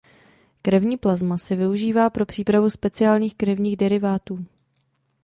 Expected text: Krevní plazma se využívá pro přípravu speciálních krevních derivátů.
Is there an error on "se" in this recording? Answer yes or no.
no